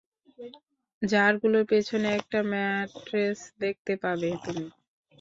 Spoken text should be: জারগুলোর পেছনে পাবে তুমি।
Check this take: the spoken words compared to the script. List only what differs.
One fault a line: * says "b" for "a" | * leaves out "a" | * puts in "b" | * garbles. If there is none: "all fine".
* puts in "একটা ম্যাট্রেস দেখতে"